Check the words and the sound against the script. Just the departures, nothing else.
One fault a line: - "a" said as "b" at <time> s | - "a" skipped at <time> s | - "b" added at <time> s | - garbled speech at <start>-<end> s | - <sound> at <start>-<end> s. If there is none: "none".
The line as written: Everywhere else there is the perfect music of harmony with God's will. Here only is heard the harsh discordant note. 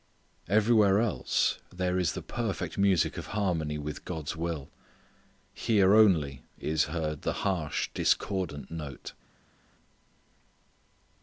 none